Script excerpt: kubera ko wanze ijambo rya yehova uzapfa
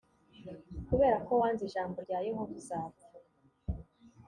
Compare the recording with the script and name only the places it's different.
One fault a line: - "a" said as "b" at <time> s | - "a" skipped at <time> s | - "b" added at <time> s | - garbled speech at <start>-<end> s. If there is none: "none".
none